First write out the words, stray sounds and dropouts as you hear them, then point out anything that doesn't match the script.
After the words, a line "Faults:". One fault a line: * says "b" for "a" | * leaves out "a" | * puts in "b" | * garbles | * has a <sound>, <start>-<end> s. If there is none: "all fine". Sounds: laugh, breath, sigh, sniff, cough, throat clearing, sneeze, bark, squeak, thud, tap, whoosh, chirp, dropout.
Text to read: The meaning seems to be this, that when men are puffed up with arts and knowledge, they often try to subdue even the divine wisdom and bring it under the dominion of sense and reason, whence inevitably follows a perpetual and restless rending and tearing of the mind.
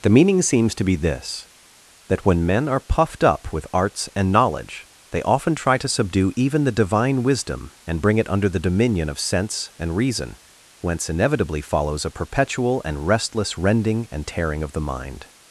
The meaning seems to be this, that when men are puffed up with arts and knowledge, they often try to subdue even the divine wisdom and bring it under the dominion of sense and reason, whence inevitably follows a perpetual and restless rending and tearing of the mind.
Faults:
all fine